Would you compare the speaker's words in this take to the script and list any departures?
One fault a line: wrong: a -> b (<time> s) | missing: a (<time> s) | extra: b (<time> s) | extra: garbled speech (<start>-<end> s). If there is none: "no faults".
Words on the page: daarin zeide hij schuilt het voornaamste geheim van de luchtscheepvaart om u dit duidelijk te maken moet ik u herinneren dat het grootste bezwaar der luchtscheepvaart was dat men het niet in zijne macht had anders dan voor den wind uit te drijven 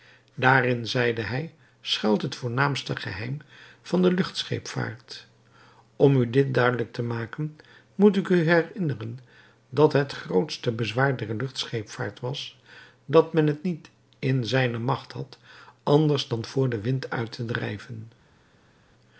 no faults